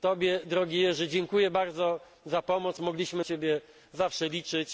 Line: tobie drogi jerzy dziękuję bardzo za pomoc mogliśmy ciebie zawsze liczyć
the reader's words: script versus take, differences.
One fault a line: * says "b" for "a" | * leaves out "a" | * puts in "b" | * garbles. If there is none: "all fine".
all fine